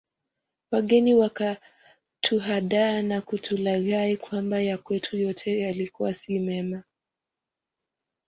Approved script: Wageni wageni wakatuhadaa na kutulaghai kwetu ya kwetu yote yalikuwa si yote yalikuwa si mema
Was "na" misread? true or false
false